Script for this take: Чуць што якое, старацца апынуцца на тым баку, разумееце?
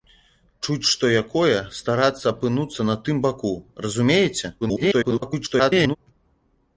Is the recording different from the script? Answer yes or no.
yes